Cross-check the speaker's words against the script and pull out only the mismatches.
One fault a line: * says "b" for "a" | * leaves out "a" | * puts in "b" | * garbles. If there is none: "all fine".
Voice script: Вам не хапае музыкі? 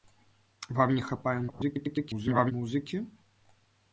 * garbles